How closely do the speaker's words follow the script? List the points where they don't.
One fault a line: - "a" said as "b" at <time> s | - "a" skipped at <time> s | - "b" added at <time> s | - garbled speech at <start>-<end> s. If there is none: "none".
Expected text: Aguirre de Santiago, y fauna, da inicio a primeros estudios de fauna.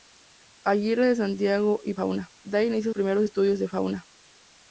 none